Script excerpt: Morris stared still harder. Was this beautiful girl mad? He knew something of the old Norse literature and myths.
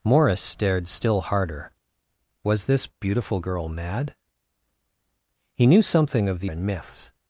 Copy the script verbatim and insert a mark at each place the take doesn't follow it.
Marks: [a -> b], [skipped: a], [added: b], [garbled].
Morris stared still harder. Was this beautiful girl mad? He knew something of the [skipped: old Norse literature] and myths.